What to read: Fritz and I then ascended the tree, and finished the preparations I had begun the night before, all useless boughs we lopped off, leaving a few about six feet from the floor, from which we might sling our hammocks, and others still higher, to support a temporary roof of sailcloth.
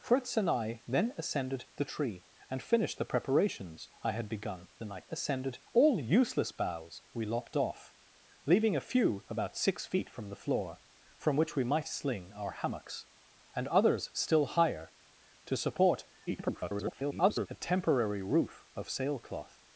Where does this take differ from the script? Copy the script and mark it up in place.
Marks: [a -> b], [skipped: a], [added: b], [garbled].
Fritz and I then ascended the tree, and finished the preparations I had begun the night [before, -> ascended] all useless boughs we lopped off, leaving a few about six feet from the floor, from which we might sling our hammocks, and others still higher, to support [garbled] a temporary roof of sailcloth.